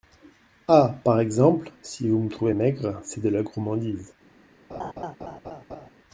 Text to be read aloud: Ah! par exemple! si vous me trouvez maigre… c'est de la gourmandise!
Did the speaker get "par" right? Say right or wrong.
right